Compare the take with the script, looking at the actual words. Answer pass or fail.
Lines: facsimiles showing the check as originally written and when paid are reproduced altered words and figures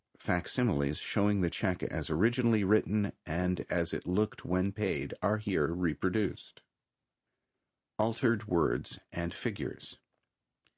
fail